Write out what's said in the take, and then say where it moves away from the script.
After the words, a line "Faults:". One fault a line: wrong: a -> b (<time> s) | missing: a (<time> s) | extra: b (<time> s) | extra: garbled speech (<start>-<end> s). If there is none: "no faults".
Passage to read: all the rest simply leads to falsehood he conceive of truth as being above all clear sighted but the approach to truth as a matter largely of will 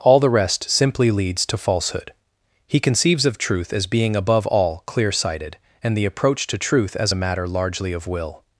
all the rest simply leads to falsehood he conceives of truth as being above all clear sighted and the approach to truth as a matter largely of will
Faults:
wrong: conceive -> conceives (2.8 s)
wrong: but -> and (5.8 s)